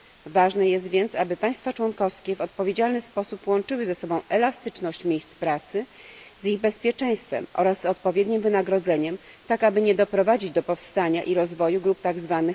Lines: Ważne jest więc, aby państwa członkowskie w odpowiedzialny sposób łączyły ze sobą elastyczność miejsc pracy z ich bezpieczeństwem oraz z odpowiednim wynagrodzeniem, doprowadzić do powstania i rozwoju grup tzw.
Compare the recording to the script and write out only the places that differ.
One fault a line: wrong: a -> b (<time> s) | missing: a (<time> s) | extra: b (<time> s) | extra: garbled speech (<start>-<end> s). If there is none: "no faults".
extra: tak aby nie (9.5 s)